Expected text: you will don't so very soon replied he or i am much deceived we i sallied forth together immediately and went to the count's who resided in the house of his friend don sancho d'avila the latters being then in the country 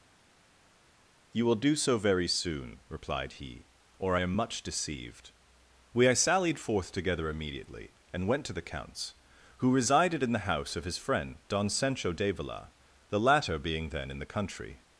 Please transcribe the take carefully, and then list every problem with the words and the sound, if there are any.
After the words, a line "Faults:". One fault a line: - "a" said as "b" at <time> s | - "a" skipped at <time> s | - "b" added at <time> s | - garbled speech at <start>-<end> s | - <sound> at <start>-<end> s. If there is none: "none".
you will do so very soon replied he or i am much deceived we i sallied forth together immediately and went to the count's who resided in the house of his friend don sancho d'avila the latter being then in the country
Faults:
- "don't" said as "do" at 1.6 s
- "latters" said as "latter" at 13.2 s